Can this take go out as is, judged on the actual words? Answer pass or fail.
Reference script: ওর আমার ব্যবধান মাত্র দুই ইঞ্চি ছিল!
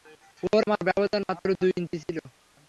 pass